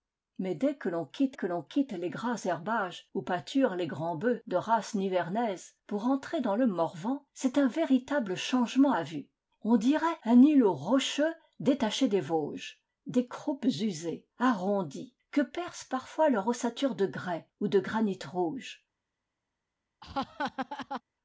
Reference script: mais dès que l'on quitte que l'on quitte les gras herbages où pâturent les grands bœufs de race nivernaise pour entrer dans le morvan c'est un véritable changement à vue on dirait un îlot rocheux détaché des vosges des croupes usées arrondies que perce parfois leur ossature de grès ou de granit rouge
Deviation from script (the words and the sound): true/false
true